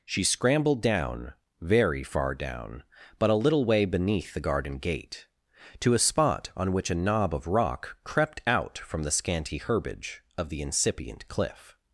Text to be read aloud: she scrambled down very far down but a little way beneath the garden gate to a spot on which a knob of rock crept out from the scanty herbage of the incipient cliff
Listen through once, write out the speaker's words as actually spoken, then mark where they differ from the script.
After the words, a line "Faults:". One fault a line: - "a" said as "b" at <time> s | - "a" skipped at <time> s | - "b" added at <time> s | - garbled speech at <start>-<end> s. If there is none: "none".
she scrambled down very far down but a little way beneath the garden gate to a spot on which a knob of rock crept out from the scanty herbage of the incipient cliff
Faults:
none